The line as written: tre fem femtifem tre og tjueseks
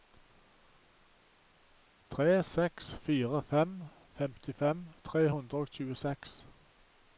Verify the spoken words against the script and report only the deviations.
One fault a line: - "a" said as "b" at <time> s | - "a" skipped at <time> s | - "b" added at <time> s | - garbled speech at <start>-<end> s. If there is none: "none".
- "seks fire" added at 2.5 s
- "hundre" added at 5.3 s